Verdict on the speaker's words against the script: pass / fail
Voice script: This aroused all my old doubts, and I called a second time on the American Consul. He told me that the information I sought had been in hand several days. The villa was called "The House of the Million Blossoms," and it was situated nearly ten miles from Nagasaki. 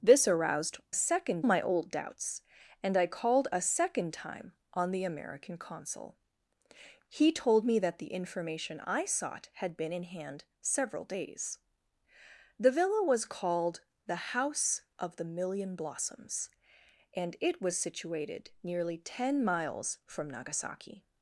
fail